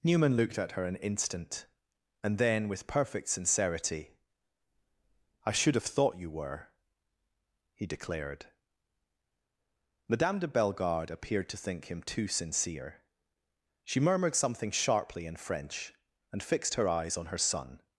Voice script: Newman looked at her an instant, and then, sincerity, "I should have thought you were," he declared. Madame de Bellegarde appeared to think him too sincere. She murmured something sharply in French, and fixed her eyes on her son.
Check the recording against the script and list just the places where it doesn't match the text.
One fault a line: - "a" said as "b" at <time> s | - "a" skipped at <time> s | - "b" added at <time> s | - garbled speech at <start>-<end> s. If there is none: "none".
- "with perfect" added at 2.7 s